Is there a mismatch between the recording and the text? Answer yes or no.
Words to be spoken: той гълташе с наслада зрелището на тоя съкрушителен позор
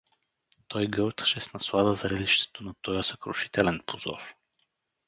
no